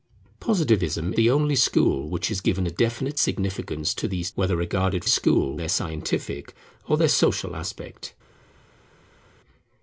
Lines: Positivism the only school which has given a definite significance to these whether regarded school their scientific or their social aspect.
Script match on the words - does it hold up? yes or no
yes